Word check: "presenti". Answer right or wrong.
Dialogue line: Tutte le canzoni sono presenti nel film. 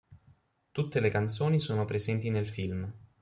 right